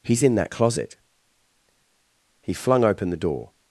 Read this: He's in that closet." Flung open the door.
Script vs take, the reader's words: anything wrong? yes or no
yes